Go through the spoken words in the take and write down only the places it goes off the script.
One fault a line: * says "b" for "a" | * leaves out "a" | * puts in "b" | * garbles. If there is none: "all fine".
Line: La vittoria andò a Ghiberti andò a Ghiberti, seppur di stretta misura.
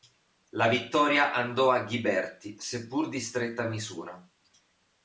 * leaves out "andò a Ghiberti"